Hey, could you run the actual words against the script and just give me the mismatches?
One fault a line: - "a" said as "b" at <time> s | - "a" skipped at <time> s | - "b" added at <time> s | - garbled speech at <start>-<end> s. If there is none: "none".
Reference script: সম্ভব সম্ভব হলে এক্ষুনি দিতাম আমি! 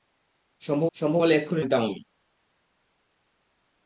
none